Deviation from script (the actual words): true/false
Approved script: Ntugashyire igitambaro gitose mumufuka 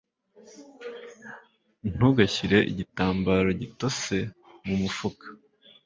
false